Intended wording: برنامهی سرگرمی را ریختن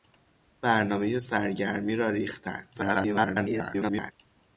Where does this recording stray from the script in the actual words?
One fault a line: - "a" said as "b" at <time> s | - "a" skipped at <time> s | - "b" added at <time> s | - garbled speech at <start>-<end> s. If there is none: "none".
- garbled speech at 2.7-4.1 s